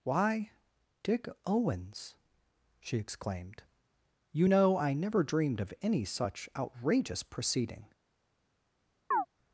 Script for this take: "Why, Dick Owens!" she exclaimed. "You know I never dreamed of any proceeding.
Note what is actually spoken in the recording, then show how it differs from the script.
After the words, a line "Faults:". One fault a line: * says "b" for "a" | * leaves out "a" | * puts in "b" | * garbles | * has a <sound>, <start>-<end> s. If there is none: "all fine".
"Why, Dick Owens!" she exclaimed. "You know I never dreamed of any such outrageous proceeding.
Faults:
* puts in "such outrageous"
* has a chirp, 9.1-9.3 s